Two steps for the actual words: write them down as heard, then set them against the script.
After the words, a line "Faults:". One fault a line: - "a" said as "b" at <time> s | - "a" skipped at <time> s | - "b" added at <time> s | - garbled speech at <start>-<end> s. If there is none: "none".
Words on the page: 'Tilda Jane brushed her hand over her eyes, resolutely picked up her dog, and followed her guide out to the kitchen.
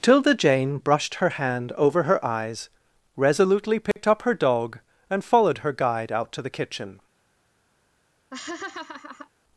'Tilda Jane brushed her hand over her eyes, resolutely picked up her dog, and followed her guide out to the kitchen.
Faults:
none